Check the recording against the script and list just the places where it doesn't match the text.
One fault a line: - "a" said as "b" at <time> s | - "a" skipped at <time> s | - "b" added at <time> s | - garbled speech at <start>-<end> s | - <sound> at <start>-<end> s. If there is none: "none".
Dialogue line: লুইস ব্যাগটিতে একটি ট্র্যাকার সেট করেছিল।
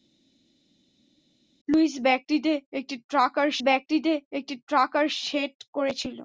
- "ব্যাগটিতে একটি ট্র্যাকার" added at 3.6 s